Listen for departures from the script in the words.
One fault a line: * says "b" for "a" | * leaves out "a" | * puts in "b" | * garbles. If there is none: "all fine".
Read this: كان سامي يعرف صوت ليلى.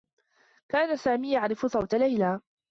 all fine